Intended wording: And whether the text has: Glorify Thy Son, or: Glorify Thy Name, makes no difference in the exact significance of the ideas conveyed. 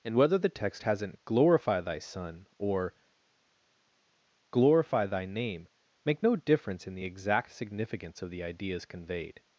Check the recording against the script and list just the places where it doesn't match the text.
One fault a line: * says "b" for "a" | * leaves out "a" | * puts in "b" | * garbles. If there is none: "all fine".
* says "hasn't" for "has"
* says "make" for "makes"